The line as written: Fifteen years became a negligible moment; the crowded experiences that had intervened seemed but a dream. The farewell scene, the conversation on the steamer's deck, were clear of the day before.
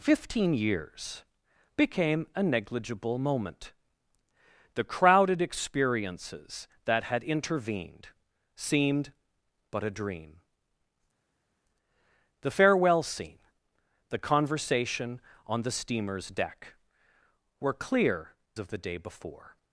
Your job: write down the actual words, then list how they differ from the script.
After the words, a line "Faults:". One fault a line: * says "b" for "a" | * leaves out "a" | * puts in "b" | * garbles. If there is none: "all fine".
Fifteen years became a negligible moment; the crowded experiences that had intervened seemed but a dream. The farewell scene, the conversation on the steamer's deck, were clear of the day before.
Faults:
all fine